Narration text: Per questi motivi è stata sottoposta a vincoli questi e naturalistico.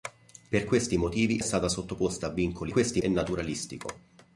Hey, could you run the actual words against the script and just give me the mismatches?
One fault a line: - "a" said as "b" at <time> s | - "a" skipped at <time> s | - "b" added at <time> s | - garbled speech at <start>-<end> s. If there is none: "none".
none